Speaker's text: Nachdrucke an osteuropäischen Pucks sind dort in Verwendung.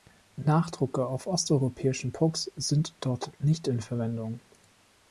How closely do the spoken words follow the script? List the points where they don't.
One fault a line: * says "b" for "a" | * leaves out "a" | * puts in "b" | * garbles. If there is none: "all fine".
* says "auf" for "an"
* puts in "nicht"